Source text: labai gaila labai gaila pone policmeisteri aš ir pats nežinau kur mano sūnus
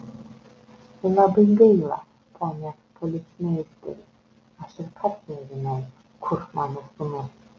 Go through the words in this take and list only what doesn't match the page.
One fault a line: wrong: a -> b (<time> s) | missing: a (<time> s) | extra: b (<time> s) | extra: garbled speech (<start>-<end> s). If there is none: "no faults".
missing: labai gaila (2.0 s)